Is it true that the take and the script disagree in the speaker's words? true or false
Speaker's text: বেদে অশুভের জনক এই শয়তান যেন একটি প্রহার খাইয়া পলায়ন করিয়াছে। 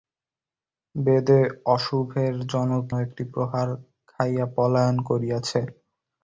true